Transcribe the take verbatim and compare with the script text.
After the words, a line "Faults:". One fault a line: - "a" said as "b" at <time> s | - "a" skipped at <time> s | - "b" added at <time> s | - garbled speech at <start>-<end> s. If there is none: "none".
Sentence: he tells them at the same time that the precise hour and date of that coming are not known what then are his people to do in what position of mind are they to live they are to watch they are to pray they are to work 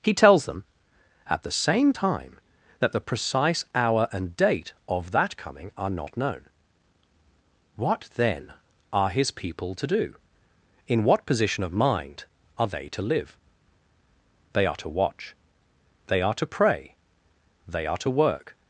he tells them at the same time that the precise hour and date of that coming are not known what then are his people to do in what position of mind are they to live they are to watch they are to pray they are to work
Faults:
none